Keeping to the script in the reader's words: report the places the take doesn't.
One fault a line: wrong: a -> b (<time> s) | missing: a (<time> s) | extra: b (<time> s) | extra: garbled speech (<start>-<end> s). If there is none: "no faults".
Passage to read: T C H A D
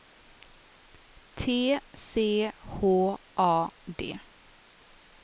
no faults